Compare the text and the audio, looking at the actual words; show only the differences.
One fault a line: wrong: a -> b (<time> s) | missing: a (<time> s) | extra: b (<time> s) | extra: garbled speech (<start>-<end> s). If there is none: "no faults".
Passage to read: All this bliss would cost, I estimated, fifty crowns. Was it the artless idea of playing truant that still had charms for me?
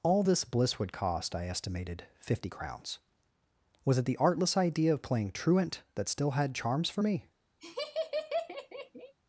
no faults